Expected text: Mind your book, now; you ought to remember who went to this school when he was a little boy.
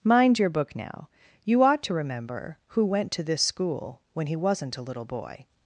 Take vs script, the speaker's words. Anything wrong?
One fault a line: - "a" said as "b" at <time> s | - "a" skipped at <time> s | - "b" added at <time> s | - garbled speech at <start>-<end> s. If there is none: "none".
- "was" said as "wasn't" at 4.3 s